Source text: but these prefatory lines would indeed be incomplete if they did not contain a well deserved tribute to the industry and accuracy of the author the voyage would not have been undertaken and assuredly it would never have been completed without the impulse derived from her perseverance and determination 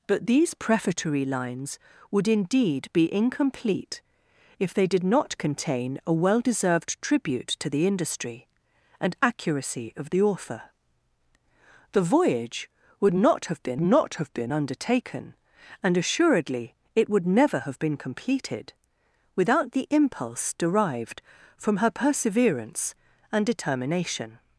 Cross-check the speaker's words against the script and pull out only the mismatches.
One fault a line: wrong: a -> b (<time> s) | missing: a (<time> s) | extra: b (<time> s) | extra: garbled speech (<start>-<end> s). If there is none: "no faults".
extra: not have been (13.8 s)